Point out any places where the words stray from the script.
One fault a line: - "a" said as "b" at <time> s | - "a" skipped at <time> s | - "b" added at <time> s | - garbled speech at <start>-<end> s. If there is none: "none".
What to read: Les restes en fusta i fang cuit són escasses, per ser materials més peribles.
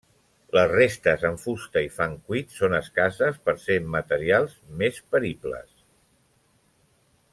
none